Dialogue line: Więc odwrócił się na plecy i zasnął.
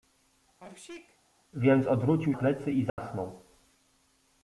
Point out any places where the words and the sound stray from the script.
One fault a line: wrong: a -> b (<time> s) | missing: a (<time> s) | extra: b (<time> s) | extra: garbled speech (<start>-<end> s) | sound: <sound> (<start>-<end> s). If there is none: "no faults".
sound: sneeze (0.6-1.2 s)
missing: się na (2.3 s)
sound: dropout (2.9-3.0 s)